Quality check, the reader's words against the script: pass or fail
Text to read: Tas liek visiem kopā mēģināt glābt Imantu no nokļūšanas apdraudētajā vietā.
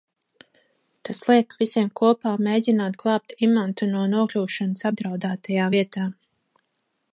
pass